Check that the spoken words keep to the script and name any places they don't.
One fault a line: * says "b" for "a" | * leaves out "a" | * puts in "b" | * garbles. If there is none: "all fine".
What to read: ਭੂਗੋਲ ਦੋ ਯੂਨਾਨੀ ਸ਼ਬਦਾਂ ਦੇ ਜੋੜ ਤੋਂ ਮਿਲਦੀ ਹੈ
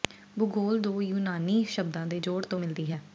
all fine